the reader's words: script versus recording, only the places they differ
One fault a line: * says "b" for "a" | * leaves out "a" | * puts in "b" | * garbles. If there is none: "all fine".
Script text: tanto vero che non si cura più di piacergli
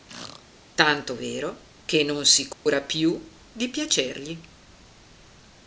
all fine